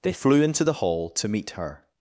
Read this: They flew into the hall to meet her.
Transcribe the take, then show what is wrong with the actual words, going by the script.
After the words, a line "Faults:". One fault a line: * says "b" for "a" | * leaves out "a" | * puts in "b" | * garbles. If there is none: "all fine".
They flew into the hall to meet her.
Faults:
all fine